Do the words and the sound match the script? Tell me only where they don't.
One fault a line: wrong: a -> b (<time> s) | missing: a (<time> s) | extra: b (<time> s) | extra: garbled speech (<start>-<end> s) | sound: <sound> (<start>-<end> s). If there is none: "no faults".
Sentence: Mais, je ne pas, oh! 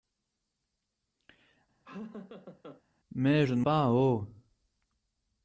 sound: laugh (1.8-2.8 s)